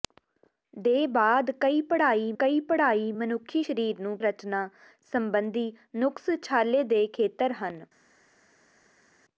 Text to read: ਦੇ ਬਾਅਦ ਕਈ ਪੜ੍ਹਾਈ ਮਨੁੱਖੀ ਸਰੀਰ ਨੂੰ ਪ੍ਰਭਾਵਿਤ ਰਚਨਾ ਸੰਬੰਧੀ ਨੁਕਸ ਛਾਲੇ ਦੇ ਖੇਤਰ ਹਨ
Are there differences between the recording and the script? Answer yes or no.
yes